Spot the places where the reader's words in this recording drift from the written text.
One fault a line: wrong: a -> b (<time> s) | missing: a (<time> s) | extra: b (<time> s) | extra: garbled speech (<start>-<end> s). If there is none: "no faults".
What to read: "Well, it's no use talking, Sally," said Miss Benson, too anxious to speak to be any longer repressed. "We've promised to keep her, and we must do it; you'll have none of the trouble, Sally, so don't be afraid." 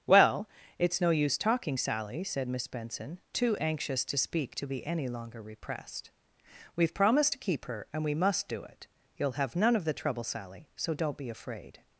no faults